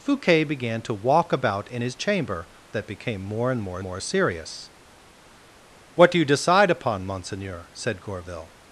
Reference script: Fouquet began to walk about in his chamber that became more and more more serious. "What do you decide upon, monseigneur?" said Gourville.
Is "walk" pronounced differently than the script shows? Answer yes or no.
no